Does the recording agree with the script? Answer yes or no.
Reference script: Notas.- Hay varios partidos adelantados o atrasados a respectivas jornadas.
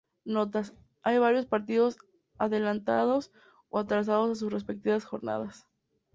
no